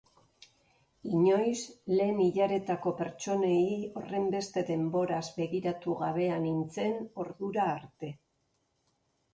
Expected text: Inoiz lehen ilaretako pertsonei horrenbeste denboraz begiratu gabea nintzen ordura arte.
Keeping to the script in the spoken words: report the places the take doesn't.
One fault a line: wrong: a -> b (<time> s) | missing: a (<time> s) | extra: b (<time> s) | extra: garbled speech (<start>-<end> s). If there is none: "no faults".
no faults